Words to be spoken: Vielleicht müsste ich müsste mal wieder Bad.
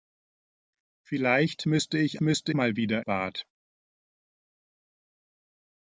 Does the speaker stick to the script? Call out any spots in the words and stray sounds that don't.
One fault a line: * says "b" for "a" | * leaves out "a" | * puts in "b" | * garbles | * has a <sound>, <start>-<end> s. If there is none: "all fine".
all fine